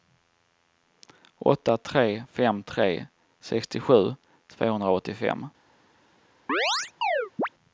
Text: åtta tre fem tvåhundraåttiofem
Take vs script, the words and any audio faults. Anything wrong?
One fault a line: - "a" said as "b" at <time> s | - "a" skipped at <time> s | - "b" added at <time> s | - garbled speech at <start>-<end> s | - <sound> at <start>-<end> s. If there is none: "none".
- "tre sextiosju" added at 2.6 s
- chirp at 6.5-7.5 s